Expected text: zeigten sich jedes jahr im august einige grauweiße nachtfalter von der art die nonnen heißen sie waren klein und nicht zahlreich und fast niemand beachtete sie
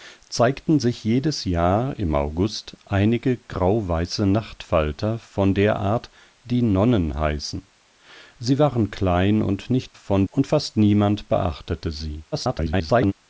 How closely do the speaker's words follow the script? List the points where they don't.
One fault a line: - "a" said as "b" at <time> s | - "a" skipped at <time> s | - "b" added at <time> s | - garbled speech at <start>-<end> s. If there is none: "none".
- "zahlreich" said as "von" at 9.9 s
- garbled speech at 12.3-13.1 s